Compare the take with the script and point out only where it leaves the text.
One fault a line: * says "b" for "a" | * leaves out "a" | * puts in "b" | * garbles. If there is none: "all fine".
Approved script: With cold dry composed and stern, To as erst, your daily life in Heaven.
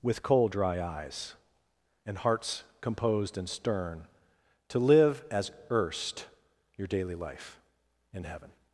* puts in "eyes and hearts"
* puts in "live"